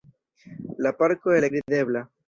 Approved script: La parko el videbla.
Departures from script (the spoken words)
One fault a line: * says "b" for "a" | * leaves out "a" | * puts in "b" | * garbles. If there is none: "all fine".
all fine